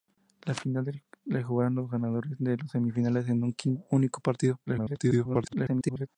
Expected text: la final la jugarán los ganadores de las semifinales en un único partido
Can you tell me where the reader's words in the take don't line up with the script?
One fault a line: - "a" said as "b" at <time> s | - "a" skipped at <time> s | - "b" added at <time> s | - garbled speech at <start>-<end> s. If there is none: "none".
- garbled speech at 4.7-6.1 s